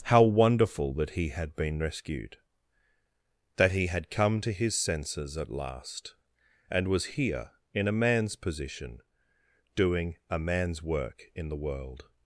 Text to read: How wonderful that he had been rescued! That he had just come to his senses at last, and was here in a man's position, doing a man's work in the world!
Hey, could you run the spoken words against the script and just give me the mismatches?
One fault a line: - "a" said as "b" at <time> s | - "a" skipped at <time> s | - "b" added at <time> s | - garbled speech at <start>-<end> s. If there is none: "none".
- "just" skipped at 4.1 s